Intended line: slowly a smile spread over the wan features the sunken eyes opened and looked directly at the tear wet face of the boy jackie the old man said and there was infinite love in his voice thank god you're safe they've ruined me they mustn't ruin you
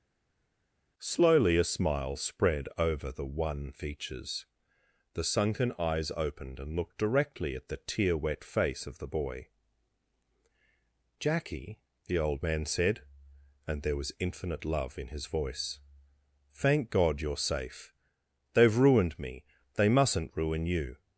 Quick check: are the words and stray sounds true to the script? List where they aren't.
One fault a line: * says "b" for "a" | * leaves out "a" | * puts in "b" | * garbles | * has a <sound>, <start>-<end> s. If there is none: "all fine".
all fine